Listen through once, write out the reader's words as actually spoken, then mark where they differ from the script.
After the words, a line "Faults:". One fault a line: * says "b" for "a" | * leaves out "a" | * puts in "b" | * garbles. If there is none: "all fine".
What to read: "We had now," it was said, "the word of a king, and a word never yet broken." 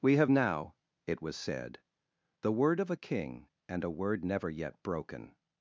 "We have now," it was said, "the word of a king, and a word never yet broken."
Faults:
* says "have" for "had"